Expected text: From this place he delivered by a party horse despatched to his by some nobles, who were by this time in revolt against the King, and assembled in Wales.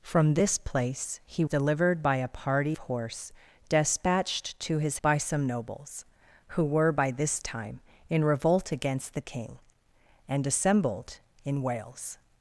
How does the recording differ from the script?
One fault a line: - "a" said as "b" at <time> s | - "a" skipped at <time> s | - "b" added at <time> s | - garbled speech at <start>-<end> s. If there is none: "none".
none